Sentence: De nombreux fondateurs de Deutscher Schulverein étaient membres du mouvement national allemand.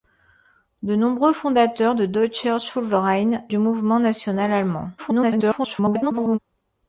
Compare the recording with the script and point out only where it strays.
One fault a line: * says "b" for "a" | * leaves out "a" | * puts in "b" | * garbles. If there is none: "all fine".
* leaves out "étaient membres"
* garbles